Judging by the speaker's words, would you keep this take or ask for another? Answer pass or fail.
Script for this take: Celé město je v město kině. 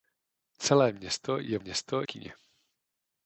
pass